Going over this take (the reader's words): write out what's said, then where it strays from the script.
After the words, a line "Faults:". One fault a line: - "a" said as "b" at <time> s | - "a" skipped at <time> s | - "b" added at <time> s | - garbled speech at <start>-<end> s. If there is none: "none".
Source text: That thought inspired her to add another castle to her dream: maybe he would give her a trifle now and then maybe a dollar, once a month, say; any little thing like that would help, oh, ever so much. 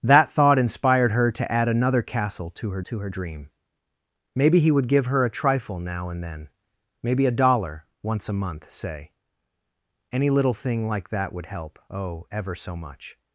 That thought inspired her to add another castle to her to her dream: maybe he would give her a trifle now and then maybe a dollar, once a month, say; any little thing like that would help, oh, ever so much.
Faults:
- "to her" added at 2.8 s